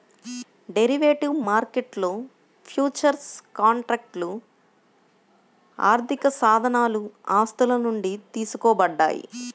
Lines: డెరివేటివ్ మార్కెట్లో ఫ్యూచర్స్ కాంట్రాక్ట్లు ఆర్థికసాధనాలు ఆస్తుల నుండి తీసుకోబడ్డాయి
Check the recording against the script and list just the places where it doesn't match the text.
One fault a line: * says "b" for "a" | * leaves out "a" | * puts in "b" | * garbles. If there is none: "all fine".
all fine